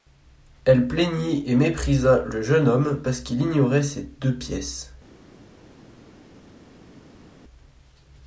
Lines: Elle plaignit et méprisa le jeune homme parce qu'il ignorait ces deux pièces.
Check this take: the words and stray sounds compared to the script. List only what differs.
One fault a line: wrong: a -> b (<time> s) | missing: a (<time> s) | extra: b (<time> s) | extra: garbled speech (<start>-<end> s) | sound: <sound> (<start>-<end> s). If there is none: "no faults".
no faults